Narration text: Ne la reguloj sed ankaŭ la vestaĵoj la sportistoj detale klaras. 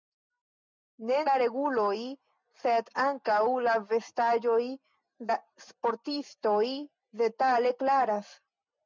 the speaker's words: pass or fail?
pass